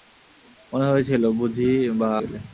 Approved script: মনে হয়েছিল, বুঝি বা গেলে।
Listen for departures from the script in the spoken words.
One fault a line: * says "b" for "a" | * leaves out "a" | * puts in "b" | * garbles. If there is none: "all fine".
all fine